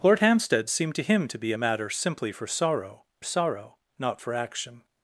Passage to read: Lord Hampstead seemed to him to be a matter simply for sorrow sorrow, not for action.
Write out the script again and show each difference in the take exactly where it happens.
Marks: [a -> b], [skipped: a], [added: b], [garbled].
Lord Hampstead seemed to him to be a matter simply for sorrow sorrow, not for action.